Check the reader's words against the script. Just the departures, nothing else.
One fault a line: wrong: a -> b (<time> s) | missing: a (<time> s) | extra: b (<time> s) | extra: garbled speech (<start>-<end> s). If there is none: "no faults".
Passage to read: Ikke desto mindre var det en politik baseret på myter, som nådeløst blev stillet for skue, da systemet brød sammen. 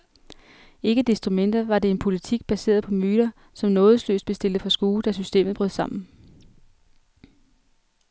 no faults